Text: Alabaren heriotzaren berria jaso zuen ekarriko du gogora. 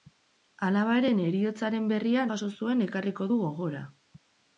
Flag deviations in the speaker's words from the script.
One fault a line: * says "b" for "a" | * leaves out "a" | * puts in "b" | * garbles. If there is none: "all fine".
all fine